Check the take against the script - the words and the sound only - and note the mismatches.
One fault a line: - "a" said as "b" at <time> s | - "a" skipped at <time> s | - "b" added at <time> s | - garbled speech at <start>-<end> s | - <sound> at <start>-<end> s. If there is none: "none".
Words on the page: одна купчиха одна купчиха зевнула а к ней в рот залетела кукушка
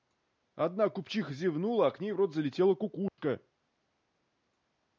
- "одна купчиха" skipped at 1.3 s
- dropout at 3.1-3.2 s